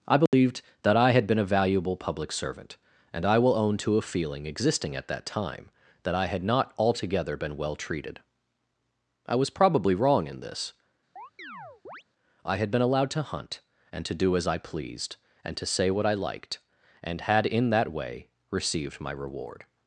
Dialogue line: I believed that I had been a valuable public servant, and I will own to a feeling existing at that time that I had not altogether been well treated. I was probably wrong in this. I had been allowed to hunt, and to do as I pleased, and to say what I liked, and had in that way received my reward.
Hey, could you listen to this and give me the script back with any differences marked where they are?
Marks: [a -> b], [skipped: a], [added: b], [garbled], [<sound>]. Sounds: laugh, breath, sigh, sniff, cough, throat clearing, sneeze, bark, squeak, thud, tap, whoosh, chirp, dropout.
I believed [dropout] that I had been a valuable public servant, and I will own to a feeling existing at that time that I had not altogether been well treated. I was probably wrong in this. [chirp] I had been allowed to hunt, and to do as I pleased, and to say what I liked, and had in that way received my reward.